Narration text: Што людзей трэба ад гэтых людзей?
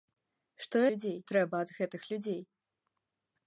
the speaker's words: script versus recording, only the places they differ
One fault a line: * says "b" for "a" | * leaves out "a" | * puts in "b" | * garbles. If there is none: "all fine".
all fine